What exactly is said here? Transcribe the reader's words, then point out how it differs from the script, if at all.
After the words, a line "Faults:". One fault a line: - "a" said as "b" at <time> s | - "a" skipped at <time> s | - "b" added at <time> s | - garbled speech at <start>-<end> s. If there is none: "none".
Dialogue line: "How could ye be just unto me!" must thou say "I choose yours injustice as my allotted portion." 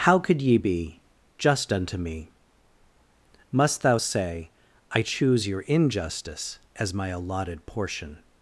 "How could ye be just unto me!" must thou say "I choose your injustice as my allotted portion."
Faults:
- "yours" said as "your" at 5.5 s